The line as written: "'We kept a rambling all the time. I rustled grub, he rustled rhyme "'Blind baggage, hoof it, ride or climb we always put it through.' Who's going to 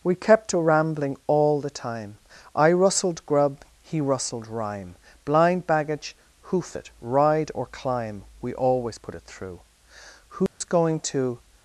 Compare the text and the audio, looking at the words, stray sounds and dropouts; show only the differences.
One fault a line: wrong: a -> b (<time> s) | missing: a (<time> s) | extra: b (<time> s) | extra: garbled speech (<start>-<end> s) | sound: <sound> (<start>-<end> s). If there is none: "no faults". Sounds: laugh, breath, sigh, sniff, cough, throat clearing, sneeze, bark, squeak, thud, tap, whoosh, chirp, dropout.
sound: dropout (10.5-10.6 s)